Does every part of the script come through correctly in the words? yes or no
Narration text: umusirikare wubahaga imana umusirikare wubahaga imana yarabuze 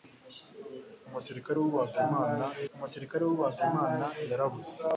yes